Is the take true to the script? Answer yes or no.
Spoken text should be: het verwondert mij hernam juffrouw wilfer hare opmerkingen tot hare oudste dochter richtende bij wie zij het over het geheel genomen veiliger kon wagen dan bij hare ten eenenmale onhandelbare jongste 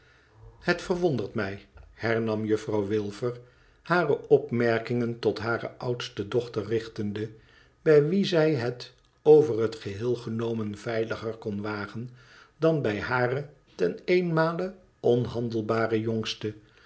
yes